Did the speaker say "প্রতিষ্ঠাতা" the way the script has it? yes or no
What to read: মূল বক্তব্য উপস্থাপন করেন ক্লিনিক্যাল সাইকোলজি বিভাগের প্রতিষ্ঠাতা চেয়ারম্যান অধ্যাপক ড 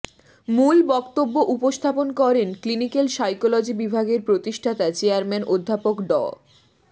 yes